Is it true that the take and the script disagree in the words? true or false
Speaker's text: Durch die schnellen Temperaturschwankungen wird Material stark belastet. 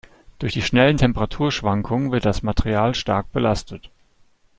true